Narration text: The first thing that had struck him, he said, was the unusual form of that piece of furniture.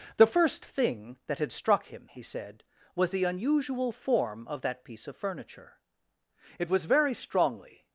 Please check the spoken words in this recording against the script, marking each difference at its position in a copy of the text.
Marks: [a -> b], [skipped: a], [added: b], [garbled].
The first thing that had struck him, he said, was the unusual form of that piece of furniture. [added: It was very strongly]